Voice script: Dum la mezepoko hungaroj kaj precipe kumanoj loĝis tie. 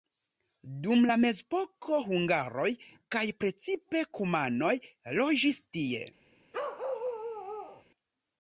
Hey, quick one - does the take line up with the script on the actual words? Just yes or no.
yes